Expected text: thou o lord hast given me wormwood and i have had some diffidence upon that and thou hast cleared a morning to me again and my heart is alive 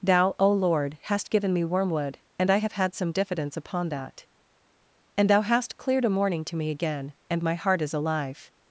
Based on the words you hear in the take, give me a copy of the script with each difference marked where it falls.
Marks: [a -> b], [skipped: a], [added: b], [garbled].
thou o lord hast given me wormwood and i have had some diffidence upon that and thou hast cleared a morning to me again and my heart is alive